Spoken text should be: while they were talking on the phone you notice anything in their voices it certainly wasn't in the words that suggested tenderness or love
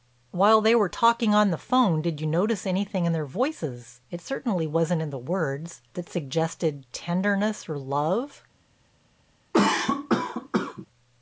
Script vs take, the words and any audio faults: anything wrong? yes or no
yes